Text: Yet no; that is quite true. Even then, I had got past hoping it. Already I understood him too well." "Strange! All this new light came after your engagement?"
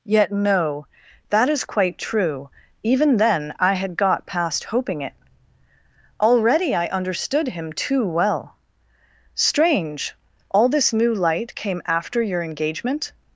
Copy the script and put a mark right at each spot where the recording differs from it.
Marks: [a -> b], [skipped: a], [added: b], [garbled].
Yet no; that is quite true. Even then, I had got past hoping it. Already I understood him too well." "Strange! All this new light came after your engagement?"